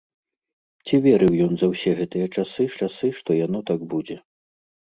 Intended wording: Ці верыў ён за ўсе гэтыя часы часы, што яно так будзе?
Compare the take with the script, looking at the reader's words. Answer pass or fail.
pass